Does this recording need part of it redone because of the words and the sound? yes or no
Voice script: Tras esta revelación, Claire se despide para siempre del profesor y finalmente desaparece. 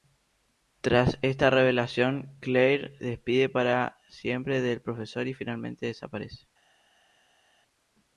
yes